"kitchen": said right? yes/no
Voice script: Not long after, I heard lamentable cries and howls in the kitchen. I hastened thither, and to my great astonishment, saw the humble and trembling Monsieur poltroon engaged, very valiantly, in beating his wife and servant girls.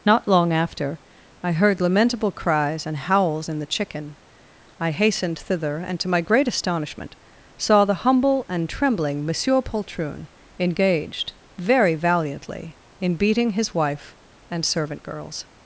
no